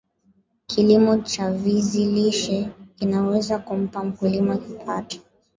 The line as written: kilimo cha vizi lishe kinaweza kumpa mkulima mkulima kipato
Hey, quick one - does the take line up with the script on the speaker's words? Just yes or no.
no